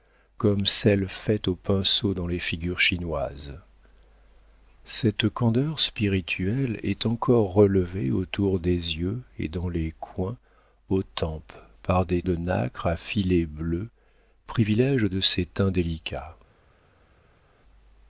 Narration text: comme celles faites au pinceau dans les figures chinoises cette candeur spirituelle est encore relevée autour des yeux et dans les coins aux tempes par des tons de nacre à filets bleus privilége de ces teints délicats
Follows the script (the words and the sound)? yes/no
no